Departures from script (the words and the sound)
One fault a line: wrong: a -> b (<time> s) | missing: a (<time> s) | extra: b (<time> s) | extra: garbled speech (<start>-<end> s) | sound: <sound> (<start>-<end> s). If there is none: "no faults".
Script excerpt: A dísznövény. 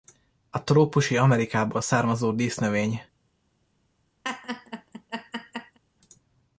extra: trópusi Amerikából származó (0.6 s)
sound: laugh (4.2-5.8 s)